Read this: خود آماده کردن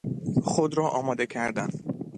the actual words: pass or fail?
fail